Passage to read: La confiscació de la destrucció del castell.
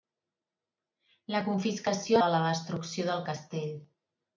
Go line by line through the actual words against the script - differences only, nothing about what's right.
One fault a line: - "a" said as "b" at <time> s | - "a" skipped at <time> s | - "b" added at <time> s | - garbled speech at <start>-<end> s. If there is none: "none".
none